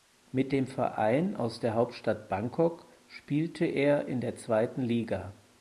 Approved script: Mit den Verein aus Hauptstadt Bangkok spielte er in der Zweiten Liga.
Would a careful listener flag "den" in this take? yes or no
yes